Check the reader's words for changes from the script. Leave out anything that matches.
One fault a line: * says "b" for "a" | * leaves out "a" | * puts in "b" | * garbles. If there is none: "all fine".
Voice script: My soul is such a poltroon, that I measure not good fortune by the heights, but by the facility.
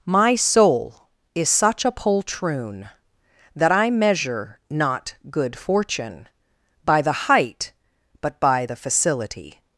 * says "height" for "heights"